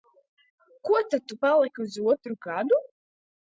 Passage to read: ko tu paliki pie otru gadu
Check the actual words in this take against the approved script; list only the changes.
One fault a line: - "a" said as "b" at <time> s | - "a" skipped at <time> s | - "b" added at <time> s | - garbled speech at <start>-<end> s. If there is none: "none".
- "tad" added at 1.1 s
- "pie" said as "uz" at 1.9 s